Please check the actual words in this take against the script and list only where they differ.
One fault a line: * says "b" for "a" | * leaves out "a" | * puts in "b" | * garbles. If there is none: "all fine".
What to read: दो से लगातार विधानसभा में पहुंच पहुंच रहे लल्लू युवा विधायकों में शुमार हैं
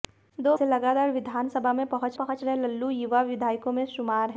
all fine